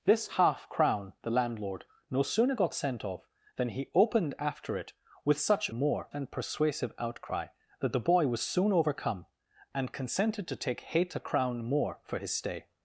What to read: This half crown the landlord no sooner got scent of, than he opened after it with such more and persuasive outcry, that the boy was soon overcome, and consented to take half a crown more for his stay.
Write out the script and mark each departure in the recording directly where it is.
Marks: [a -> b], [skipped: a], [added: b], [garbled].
This half crown the landlord no sooner got scent of, than he opened after it with such more and persuasive outcry, that the boy was soon overcome, and consented to take half a crown more for his stay.